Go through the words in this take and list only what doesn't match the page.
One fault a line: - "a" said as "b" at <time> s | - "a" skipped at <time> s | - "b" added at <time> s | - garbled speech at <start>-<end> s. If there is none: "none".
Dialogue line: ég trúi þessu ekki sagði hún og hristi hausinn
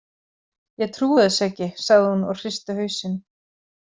none